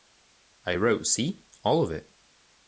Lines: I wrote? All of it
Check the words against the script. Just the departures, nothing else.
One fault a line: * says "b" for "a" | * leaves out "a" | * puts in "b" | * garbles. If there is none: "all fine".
* puts in "see"